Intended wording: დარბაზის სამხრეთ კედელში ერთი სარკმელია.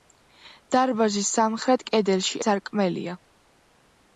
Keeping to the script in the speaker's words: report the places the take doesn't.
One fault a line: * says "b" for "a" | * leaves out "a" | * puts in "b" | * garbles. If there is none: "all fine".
* leaves out "ერთი"